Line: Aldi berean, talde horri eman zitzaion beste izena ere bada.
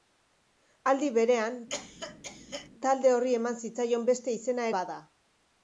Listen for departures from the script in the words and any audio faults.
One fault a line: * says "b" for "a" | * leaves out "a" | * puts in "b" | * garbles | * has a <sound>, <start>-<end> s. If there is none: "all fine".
* has a cough, 1.7-2.7 s
* leaves out "ere"